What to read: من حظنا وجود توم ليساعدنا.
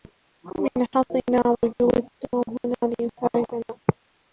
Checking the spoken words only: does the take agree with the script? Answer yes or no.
no